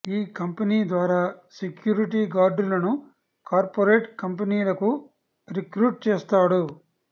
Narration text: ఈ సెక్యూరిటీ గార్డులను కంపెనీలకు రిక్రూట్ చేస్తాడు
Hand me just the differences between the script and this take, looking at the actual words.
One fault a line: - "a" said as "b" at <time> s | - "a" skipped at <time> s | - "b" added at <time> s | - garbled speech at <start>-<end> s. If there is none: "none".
- "కంపెనీ ద్వారా" added at 0.4 s
- "కార్పొరేట్" added at 3.5 s